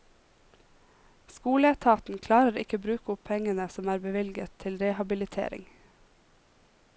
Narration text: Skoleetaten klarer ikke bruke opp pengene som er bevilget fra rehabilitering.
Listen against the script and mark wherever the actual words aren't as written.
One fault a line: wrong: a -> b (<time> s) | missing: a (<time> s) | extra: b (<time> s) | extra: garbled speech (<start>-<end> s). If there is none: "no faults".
wrong: fra -> til (4.6 s)